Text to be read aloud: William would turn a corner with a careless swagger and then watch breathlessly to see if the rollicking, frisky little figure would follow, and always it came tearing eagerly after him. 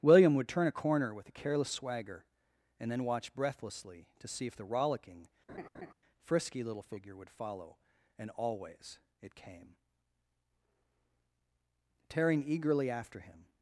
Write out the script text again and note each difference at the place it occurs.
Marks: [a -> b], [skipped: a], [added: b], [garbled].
William would turn a corner with a careless swagger and then watch breathlessly to see if the rollicking, frisky little figure would follow, and always it came tearing eagerly after him.